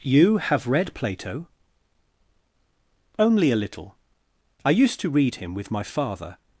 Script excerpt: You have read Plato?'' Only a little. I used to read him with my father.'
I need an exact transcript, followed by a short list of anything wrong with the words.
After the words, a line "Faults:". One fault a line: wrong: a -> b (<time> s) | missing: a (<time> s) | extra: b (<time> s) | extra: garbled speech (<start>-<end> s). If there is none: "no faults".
You have read Plato?'' Only a little. I used to read him with my father.'
Faults:
no faults